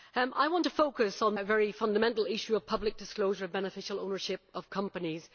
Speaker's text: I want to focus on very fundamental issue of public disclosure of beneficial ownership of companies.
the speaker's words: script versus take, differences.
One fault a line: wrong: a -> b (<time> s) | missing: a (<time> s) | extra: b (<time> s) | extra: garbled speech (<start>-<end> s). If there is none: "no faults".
no faults